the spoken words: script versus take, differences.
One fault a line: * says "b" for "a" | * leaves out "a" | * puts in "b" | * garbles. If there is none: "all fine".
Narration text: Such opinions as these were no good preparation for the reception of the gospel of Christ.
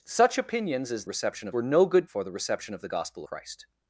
* says "reception" for "these"
* leaves out "preparation"
* leaves out "of"